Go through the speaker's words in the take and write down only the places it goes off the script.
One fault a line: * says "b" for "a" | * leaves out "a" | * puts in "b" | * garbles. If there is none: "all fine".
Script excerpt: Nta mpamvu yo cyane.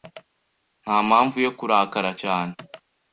* puts in "kurakara"